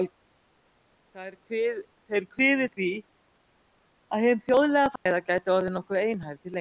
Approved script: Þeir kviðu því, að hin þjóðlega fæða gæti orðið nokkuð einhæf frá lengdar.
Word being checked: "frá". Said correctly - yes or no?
no